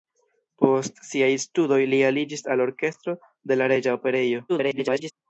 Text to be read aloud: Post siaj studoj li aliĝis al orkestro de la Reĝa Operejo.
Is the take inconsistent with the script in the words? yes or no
yes